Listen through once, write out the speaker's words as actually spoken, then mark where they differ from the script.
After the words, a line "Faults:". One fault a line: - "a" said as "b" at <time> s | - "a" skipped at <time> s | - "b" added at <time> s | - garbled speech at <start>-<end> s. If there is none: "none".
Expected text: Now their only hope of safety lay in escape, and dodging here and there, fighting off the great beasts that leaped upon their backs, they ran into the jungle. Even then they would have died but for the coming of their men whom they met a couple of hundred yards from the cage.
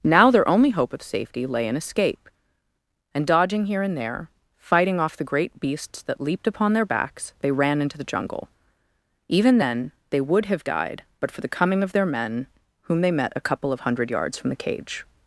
Now their only hope of safety lay in escape, and dodging here and there, fighting off the great beasts that leaped upon their backs, they ran into the jungle. Even then they would have died but for the coming of their men whom they met a couple of hundred yards from the cage.
Faults:
none